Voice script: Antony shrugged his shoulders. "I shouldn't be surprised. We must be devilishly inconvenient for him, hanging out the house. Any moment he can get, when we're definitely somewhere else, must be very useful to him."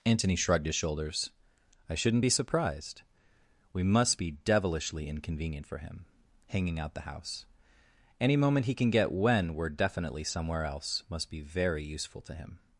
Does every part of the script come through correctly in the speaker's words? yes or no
yes